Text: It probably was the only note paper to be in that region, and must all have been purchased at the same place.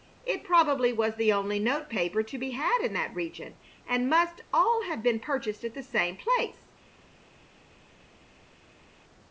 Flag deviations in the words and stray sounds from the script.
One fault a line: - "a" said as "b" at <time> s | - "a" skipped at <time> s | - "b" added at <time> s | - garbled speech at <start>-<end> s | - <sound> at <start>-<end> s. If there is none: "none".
- "had" added at 2.6 s